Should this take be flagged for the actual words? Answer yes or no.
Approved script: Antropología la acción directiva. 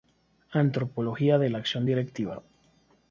yes